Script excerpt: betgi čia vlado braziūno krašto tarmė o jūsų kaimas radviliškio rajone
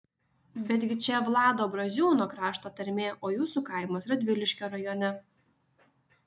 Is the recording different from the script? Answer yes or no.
no